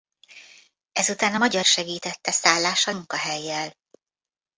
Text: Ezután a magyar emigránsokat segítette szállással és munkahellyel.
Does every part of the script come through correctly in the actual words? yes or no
no